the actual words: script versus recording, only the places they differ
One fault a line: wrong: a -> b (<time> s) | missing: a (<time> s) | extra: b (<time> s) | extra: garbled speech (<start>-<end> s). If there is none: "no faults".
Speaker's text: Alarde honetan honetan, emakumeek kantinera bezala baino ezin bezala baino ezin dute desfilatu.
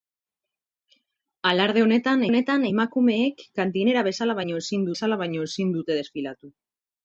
no faults